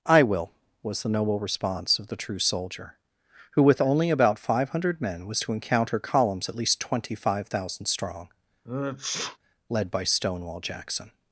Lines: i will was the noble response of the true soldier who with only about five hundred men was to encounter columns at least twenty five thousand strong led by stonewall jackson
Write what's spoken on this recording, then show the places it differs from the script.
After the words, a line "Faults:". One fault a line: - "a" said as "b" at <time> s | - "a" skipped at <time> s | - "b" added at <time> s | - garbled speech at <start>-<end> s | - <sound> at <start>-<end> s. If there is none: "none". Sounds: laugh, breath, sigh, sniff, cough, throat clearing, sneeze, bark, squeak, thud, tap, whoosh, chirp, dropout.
i will was the noble response of the true soldier who with only about five hundred men was to encounter columns at least twenty five thousand strong led by stonewall jackson
Faults:
- sneeze at 8.6-9.4 s